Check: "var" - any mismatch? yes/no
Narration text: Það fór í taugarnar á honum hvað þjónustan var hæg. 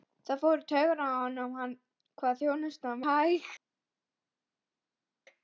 yes